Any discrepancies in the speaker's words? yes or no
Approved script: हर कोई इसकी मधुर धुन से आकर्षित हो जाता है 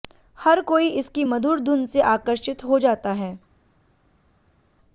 no